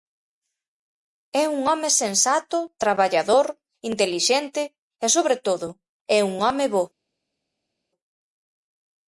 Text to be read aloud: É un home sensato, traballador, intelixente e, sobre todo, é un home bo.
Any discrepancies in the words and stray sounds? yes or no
no